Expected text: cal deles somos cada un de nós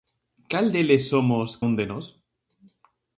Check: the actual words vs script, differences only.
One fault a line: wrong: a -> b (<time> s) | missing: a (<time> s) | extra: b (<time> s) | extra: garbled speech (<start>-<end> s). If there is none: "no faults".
missing: cada (1.5 s)